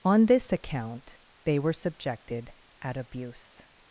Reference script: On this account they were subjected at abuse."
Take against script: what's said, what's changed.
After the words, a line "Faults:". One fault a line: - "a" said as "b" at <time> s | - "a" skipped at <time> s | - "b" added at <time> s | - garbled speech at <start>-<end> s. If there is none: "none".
On this account they were subjected at abuse."
Faults:
none